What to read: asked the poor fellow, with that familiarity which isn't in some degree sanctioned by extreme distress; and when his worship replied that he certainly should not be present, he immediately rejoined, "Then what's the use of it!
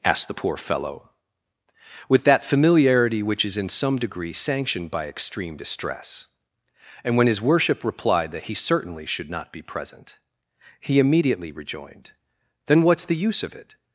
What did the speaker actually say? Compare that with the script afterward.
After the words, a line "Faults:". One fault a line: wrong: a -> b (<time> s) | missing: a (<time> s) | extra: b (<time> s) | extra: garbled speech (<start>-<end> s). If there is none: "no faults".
asked the poor fellow, with that familiarity which is in some degree sanctioned by extreme distress; and when his worship replied that he certainly should not be present, he immediately rejoined, "Then what's the use of it!
Faults:
wrong: isn't -> is (3.4 s)